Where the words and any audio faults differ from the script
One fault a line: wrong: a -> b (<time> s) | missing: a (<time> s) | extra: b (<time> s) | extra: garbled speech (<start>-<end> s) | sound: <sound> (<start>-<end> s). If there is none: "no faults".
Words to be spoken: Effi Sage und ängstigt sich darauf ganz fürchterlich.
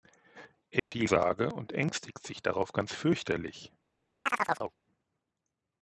sound: dropout (0.8-0.9 s)
sound: chirp (4.3-4.8 s)